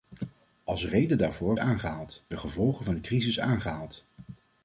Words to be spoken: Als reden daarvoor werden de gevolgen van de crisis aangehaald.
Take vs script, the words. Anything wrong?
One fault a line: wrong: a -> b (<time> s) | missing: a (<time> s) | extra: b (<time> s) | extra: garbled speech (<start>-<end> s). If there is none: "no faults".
wrong: werden -> aangehaald (1.6 s)